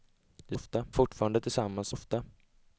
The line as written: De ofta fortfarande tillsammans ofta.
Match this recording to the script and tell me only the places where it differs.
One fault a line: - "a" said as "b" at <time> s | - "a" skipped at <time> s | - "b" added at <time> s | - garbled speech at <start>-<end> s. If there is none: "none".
none